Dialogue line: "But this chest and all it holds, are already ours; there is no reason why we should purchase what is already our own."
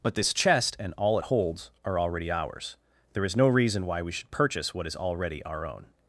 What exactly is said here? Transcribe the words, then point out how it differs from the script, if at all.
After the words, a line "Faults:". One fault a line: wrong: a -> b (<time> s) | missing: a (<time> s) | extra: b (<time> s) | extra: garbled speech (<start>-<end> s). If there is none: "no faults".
"But this chest and all it holds, are already ours; there is no reason why we should purchase what is already our own."
Faults:
no faults